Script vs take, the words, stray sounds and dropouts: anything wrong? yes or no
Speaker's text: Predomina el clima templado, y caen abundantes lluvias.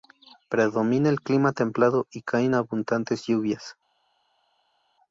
no